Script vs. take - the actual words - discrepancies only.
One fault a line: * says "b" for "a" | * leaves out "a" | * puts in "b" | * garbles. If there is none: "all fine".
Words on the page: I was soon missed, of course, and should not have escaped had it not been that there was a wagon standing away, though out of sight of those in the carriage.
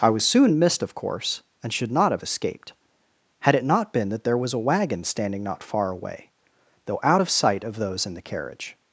* puts in "not far"